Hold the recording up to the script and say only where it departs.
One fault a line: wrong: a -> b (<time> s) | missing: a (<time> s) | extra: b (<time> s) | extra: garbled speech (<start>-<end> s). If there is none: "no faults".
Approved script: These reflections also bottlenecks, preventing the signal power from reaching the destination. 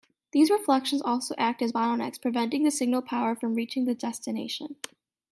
extra: act as (1.4 s)